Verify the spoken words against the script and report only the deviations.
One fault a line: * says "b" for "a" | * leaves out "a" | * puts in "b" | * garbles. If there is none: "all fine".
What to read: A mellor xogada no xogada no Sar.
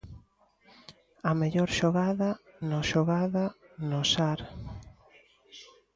all fine